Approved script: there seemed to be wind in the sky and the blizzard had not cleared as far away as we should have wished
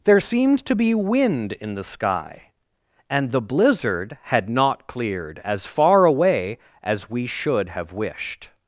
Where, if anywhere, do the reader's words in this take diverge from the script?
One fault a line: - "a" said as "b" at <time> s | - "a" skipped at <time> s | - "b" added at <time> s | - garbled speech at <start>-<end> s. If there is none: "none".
none